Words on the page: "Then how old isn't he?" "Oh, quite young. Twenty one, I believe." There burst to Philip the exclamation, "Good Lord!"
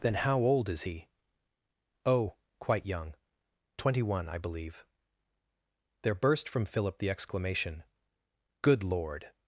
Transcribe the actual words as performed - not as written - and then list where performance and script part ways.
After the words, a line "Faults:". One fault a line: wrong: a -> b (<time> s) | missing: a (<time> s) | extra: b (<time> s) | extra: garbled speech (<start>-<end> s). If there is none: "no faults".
"Then how old is he?" "Oh, quite young. Twenty one, I believe." There burst from Philip the exclamation, "Good Lord!"
Faults:
wrong: isn't -> is (0.7 s)
wrong: to -> from (6.5 s)